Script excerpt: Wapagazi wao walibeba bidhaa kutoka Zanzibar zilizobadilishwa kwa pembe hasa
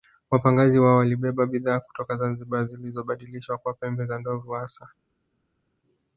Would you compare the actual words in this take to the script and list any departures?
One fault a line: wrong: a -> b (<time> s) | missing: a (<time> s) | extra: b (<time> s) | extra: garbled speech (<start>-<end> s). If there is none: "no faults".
extra: za ndovu (4.0 s)